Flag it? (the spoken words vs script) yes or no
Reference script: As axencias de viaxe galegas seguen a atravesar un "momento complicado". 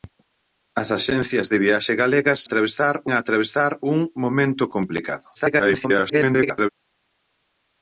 yes